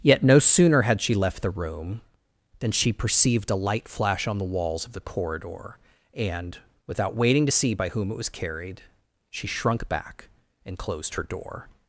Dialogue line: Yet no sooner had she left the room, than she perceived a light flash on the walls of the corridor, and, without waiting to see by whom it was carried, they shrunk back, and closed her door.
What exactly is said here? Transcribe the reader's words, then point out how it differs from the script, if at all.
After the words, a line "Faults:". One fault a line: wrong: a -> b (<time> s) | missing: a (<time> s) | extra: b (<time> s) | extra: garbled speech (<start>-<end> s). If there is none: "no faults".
Yet no sooner had she left the room, than she perceived a light flash on the walls of the corridor, and, without waiting to see by whom it was carried, she shrunk back, and closed her door.
Faults:
wrong: they -> she (9.3 s)